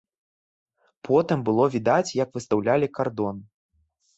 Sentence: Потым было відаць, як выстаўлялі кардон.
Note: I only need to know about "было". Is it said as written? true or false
true